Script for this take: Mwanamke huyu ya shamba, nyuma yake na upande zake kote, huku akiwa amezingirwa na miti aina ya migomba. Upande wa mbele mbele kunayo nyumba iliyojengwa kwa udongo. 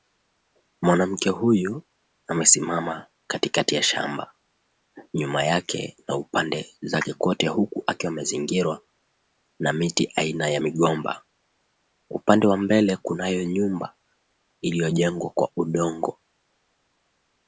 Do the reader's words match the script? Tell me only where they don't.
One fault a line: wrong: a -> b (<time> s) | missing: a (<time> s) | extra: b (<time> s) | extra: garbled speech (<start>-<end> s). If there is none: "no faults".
extra: amesimama katikati (2.3 s)
missing: mbele (13.0 s)